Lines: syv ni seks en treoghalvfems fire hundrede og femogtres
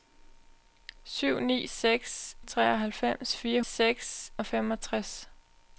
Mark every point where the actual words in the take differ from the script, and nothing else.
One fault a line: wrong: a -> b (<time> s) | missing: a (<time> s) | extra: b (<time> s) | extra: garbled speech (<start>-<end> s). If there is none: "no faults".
missing: en (2.4 s)
wrong: hundrede -> seks (3.6 s)